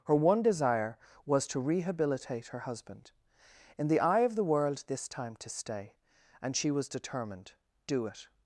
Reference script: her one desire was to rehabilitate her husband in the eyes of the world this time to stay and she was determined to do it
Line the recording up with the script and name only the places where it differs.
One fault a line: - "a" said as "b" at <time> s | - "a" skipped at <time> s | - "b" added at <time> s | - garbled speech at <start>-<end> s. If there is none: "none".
- "eyes" said as "eye" at 4.0 s
- "to" skipped at 7.5 s